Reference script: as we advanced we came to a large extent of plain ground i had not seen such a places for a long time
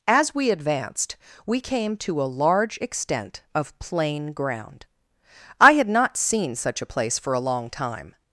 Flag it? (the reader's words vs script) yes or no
yes